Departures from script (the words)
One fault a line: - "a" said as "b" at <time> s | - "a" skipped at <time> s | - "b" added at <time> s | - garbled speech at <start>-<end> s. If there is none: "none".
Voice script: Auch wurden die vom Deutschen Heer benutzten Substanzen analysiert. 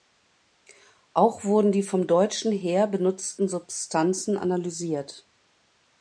none